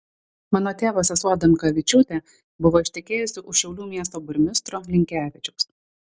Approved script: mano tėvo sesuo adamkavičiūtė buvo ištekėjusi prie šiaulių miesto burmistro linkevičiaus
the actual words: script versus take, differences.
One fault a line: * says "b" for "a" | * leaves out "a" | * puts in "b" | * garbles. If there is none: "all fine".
* says "už" for "prie"